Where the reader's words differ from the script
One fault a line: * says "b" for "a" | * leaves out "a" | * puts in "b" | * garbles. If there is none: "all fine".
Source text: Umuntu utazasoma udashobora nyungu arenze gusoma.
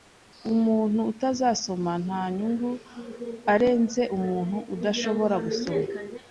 * says "nta" for "udashobora"
* puts in "umuntu udashobora"